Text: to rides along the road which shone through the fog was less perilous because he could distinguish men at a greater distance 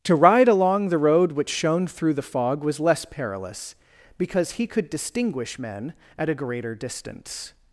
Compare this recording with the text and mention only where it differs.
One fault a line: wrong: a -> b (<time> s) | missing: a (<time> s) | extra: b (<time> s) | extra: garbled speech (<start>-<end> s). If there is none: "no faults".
wrong: rides -> ride (0.1 s)